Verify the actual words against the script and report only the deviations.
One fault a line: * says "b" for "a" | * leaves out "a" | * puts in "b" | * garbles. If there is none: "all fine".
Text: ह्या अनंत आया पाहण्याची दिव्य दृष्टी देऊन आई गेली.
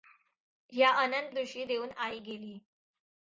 * leaves out "आया पाहण्याची दिव्य"